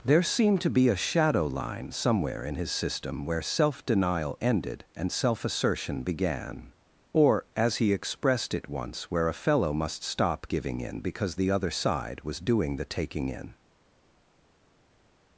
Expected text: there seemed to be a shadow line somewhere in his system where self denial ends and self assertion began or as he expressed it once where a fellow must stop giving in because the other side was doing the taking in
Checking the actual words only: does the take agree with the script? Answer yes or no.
no